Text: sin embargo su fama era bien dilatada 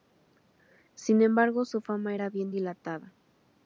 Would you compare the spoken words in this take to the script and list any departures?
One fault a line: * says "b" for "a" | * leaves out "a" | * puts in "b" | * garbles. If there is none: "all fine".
all fine